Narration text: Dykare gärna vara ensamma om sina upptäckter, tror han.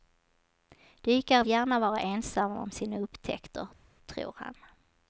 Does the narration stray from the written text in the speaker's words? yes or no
no